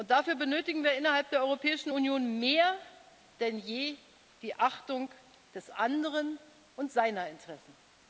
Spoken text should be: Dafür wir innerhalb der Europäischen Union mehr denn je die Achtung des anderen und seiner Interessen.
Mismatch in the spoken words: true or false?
true